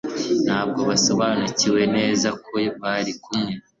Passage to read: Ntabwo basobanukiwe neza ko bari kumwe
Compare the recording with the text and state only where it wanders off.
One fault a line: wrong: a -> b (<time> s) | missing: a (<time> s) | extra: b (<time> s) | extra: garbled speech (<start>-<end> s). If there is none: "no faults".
no faults